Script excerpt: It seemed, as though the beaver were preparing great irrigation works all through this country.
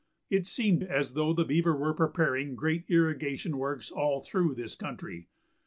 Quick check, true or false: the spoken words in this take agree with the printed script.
true